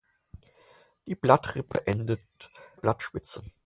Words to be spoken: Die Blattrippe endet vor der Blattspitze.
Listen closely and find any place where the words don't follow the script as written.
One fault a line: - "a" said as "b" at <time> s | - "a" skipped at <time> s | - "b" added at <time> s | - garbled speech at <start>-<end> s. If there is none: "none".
- "vor der" skipped at 2.5 s